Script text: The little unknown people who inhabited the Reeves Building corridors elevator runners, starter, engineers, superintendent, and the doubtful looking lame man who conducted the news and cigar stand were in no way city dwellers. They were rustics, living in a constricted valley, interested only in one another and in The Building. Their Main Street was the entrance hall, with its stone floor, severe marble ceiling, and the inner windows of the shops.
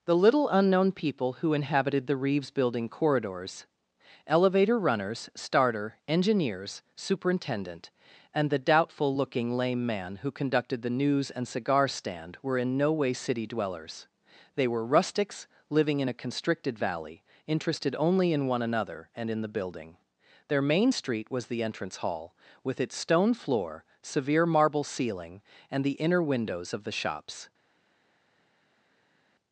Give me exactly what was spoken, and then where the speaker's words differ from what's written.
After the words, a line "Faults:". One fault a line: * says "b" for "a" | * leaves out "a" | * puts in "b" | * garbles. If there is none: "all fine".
The little unknown people who inhabited the Reeves Building corridors elevator runners, starter, engineers, superintendent, and the doubtful looking lame man who conducted the news and cigar stand were in no way city dwellers. They were rustics, living in a constricted valley, interested only in one another and in The Building. Their Main Street was the entrance hall, with its stone floor, severe marble ceiling, and the inner windows of the shops.
Faults:
all fine